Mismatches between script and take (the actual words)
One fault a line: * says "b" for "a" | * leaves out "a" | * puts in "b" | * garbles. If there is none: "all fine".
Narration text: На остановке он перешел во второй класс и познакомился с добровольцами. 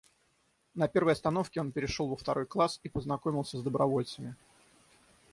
* puts in "первой"